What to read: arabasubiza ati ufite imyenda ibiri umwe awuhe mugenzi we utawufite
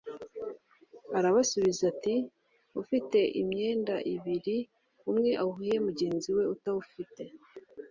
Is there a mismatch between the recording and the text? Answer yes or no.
no